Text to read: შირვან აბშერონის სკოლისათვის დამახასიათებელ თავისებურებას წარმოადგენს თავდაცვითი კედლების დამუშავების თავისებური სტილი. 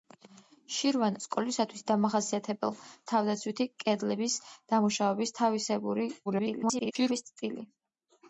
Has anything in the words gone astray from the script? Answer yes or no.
yes